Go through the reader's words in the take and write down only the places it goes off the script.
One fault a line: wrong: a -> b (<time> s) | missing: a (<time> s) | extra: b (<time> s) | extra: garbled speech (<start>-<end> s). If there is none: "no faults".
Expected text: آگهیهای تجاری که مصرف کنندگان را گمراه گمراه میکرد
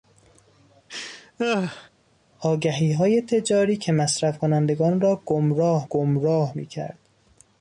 no faults